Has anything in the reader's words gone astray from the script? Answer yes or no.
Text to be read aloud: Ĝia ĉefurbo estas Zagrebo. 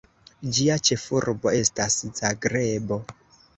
no